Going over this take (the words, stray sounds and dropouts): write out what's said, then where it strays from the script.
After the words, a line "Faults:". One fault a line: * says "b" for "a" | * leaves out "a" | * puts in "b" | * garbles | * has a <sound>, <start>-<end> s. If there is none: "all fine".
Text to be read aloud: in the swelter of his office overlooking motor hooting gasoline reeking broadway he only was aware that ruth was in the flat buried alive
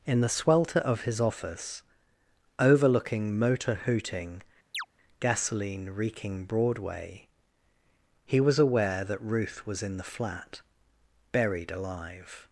in the swelter of his office overlooking motor hooting gasoline reeking broadway he was aware that ruth was in the flat buried alive
Faults:
* has a chirp, 4.7-4.9 s
* leaves out "only"